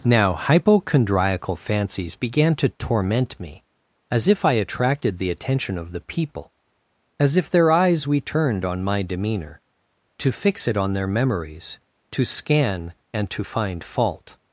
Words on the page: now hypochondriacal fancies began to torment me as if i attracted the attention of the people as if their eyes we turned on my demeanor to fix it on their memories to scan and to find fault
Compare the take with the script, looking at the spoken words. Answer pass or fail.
pass